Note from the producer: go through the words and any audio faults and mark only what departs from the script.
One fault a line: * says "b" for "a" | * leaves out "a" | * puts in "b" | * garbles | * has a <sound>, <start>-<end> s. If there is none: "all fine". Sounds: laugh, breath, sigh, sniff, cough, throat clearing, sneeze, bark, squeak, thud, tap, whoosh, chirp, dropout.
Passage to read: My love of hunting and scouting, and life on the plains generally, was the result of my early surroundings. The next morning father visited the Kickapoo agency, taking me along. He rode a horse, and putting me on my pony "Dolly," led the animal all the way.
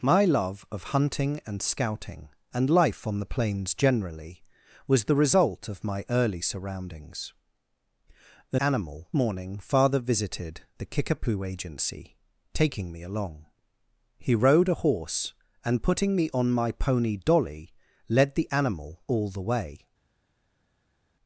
* says "animal" for "next"